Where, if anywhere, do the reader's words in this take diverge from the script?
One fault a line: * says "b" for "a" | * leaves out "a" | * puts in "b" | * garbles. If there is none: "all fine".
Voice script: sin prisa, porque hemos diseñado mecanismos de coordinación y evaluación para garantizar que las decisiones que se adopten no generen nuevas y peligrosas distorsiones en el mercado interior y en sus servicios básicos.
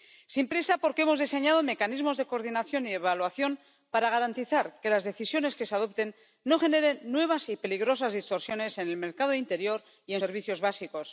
* leaves out "sus"